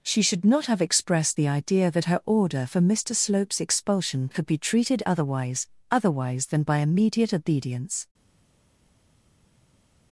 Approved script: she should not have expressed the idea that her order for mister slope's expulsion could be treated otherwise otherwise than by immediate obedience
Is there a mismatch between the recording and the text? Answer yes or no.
no